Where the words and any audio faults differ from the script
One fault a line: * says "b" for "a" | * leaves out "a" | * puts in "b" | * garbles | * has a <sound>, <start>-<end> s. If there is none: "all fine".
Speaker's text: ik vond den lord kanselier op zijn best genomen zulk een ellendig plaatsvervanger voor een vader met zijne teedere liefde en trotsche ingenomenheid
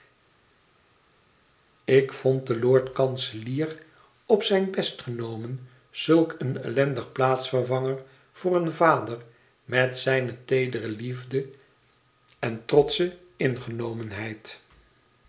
all fine